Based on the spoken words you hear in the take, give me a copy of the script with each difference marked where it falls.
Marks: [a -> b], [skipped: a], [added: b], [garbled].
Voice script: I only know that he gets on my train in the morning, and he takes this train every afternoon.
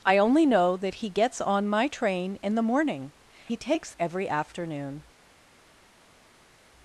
I only know that he gets on my train in the morning, [skipped: and] he takes [skipped: this train] every afternoon.